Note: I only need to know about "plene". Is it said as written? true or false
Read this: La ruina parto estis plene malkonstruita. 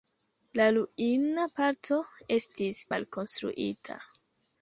false